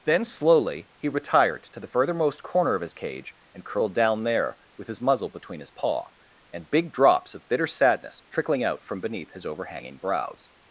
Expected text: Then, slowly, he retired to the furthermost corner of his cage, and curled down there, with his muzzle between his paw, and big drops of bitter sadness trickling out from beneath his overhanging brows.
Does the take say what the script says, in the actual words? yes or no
yes